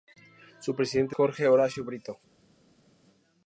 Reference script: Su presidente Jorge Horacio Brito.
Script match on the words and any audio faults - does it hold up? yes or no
yes